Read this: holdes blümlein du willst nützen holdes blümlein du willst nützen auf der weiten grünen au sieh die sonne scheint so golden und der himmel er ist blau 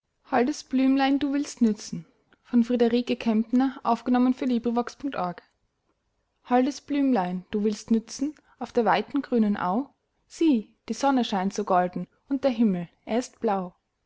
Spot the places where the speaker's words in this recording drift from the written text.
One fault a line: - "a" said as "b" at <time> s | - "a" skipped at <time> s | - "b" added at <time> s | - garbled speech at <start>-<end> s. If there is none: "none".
none